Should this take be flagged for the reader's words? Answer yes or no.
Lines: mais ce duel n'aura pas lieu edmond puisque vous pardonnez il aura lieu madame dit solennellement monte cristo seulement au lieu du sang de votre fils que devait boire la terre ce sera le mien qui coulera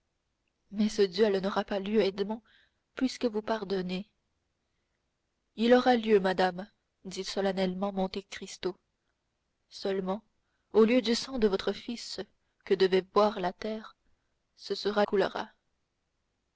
yes